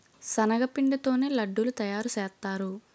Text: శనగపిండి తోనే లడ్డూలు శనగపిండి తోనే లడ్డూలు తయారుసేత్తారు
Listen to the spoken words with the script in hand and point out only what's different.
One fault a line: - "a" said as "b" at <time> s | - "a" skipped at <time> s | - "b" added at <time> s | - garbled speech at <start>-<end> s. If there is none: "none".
- "శనగపిండి తోనే లడ్డూలు" skipped at 1.7 s